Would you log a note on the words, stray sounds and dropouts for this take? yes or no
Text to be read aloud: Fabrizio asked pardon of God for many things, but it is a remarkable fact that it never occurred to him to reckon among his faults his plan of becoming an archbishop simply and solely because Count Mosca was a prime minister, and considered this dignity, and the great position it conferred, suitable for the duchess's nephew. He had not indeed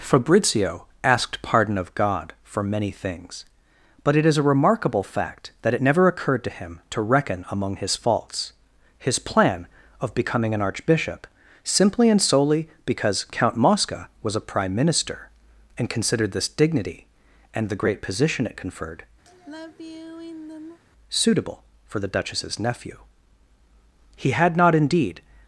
yes